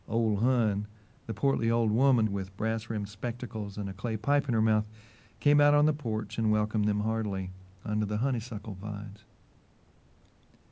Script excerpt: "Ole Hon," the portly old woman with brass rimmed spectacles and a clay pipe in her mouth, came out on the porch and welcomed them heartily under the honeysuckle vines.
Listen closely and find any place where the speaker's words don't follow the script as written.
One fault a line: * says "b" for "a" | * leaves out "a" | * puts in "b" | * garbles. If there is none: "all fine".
all fine